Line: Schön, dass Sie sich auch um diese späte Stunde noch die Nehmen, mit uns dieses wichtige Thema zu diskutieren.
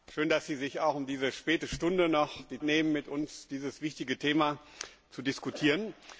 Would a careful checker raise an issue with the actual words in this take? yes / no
no